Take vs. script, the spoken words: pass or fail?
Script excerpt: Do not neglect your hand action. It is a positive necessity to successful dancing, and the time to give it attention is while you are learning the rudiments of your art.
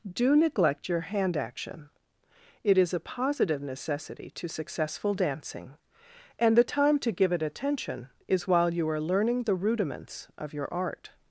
fail